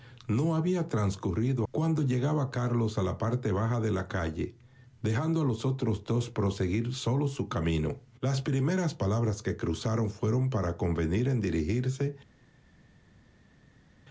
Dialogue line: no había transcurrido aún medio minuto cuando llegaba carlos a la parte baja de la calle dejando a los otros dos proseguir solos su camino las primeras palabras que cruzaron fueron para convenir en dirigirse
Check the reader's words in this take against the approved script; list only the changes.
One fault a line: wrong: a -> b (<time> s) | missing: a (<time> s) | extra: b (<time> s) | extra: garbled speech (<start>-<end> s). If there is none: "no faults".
missing: aún medio minuto (1.7 s)